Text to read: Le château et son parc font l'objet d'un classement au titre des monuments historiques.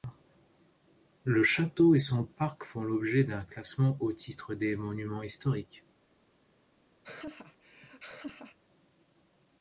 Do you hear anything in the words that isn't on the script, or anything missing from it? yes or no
no